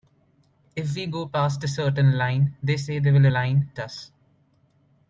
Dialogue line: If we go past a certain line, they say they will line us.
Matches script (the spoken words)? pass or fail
pass